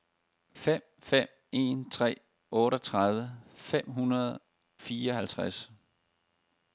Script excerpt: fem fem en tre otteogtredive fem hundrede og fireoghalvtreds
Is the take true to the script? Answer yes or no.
no